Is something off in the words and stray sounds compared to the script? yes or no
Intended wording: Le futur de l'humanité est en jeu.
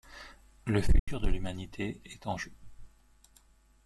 yes